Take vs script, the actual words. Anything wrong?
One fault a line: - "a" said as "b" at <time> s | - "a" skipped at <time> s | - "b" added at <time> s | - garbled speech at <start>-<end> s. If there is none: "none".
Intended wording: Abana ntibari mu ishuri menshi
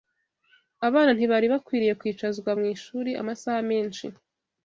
- "bakwiriye kwicazwa" added at 1.5 s
- "amasaha" added at 3.2 s